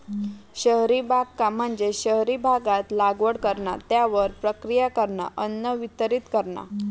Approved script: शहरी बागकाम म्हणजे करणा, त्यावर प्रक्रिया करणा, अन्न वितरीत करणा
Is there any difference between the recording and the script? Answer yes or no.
yes